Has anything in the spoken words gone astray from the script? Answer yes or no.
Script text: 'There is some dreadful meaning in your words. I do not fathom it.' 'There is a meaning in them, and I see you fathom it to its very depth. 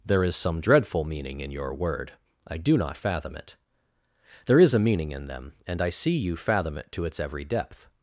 yes